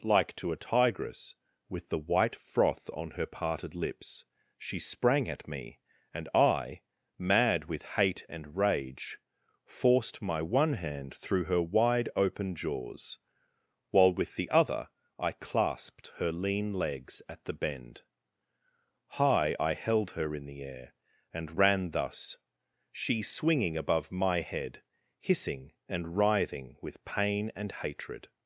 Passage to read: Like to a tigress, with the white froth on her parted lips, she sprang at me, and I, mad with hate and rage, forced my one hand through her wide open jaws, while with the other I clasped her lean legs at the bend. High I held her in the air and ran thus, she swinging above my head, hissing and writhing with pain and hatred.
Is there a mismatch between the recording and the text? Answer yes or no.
no